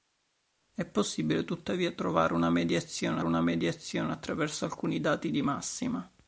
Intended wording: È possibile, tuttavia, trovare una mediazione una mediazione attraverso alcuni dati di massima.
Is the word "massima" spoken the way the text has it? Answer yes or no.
yes